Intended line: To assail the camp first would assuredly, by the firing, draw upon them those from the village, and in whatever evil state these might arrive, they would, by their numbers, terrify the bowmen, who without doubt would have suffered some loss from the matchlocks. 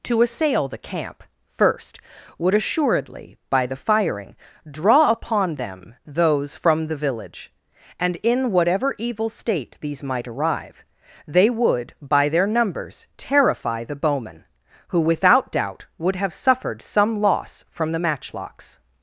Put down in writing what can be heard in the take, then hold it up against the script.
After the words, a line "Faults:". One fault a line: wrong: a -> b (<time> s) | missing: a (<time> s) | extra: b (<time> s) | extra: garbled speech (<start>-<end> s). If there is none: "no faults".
To assail the camp first would assuredly, by the firing, draw upon them those from the village, and in whatever evil state these might arrive, they would, by their numbers, terrify the bowmen, who without doubt would have suffered some loss from the matchlocks.
Faults:
no faults